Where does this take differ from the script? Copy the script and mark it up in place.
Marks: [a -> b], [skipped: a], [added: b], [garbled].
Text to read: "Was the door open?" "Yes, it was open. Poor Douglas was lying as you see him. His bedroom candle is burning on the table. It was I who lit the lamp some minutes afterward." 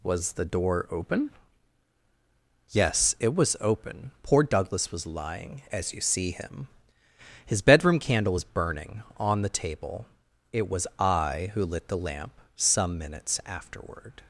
"Was the door open?" "Yes, it was open. Poor Douglas was lying as you see him. His bedroom candle is burning on the table. It was I who lit the lamp some minutes afterward."